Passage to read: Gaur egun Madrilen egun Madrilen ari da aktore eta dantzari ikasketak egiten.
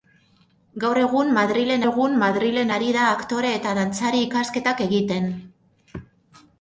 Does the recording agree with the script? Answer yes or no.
yes